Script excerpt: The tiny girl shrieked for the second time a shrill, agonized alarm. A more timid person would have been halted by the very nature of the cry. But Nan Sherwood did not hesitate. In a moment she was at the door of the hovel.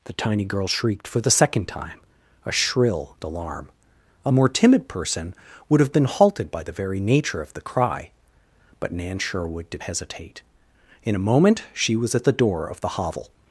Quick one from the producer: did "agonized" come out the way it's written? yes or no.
no